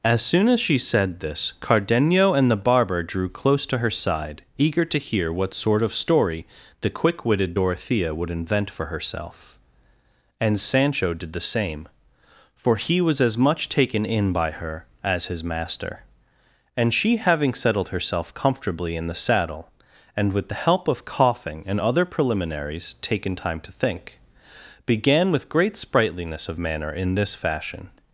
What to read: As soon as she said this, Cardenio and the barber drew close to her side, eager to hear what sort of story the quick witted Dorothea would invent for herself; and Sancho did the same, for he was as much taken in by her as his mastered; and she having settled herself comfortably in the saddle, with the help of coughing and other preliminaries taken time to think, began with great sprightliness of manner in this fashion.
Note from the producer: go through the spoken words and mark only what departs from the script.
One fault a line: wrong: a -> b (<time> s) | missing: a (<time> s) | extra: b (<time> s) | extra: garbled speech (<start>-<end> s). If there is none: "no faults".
wrong: mastered -> master (15.4 s)
extra: and (20.1 s)